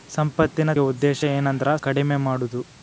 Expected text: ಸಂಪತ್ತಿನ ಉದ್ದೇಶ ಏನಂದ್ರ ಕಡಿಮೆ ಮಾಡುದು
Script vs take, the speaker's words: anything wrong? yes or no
no